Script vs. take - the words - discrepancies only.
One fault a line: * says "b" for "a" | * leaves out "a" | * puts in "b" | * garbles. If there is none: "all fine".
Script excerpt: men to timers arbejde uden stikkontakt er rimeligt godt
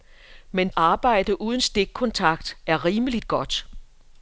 * leaves out "to timers"